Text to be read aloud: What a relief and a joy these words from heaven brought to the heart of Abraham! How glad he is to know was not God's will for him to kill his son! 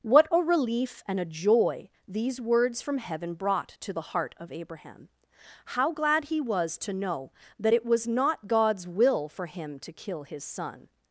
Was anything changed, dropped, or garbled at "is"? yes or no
yes